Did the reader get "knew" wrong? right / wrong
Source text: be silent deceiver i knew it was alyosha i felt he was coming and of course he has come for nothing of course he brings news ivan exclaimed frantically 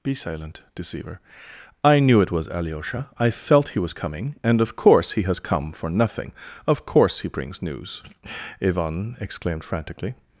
right